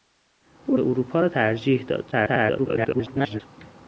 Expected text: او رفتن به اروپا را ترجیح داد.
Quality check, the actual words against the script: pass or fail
fail